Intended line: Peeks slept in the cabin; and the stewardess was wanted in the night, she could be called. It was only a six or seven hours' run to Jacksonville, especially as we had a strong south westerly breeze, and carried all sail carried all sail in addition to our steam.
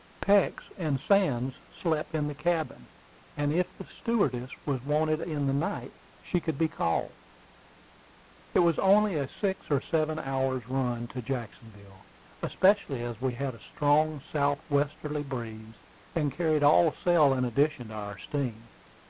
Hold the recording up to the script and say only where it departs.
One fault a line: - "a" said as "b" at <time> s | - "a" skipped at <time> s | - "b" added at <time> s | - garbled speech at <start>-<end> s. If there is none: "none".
- "and Sands" added at 0.8 s
- "if" added at 3.5 s
- "carried all sail" skipped at 17.3 s